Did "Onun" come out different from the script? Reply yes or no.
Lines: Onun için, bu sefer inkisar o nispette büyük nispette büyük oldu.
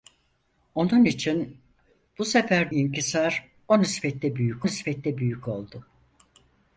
no